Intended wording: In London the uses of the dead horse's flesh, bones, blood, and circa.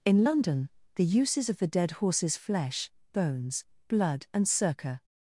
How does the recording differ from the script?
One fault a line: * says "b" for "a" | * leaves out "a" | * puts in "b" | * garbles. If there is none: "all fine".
all fine